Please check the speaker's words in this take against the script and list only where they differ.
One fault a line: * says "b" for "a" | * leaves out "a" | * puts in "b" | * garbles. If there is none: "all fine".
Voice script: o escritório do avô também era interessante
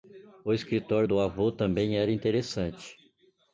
all fine